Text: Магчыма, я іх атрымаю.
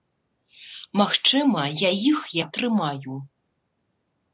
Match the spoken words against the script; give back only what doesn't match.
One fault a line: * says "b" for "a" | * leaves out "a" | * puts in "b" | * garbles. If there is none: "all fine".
all fine